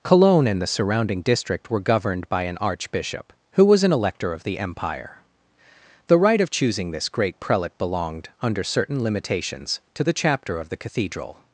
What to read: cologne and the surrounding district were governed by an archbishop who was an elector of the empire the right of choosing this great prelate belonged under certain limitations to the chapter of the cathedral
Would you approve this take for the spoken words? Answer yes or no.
yes